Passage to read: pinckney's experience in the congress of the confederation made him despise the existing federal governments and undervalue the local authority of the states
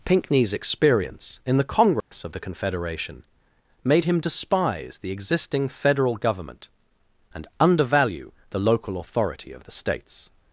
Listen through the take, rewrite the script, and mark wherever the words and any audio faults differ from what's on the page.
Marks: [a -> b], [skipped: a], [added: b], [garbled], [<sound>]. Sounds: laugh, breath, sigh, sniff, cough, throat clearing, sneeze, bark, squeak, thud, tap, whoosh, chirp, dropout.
pinckney's experience in the congress [dropout] of the confederation made him despise the existing federal [governments -> government] and undervalue the local authority of the states